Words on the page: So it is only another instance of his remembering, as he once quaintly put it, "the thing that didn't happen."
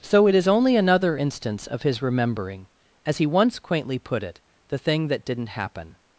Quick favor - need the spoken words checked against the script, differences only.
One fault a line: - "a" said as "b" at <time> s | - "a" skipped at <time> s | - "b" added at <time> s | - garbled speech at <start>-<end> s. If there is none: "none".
none